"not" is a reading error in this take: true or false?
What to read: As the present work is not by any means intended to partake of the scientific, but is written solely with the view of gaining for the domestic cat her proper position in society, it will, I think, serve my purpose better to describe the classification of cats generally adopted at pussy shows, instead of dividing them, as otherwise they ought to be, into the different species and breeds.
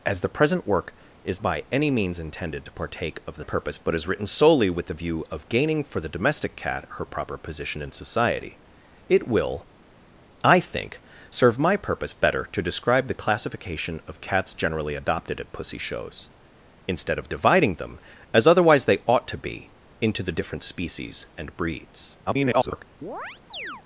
true